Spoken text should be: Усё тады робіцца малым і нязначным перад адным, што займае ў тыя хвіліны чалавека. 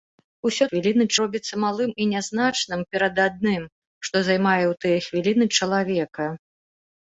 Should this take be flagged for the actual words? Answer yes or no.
yes